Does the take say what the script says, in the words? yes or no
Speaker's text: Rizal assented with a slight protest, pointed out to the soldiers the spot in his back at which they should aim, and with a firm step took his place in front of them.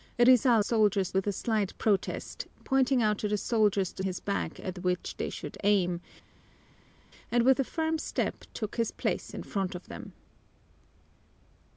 no